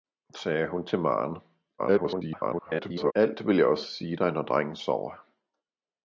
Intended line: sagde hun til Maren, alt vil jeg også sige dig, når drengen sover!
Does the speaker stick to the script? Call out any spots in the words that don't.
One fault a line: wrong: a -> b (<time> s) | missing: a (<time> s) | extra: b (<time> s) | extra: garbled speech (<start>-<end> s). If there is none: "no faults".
extra: garbled speech (1.8-3.1 s)